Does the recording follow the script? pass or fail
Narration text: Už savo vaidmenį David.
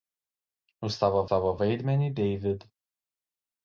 fail